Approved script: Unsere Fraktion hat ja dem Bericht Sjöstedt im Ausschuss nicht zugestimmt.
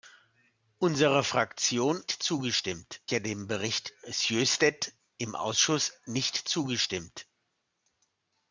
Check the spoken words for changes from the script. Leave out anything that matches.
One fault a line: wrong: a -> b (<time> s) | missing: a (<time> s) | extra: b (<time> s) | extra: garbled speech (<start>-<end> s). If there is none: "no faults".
wrong: hat -> zugestimmt (2.1 s)